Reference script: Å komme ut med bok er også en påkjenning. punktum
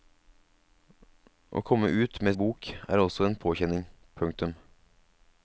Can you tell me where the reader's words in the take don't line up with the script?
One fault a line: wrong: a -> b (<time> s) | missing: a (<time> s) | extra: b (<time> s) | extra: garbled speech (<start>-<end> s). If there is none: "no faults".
no faults